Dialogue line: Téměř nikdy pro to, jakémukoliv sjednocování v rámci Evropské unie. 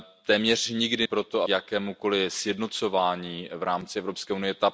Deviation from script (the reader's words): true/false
false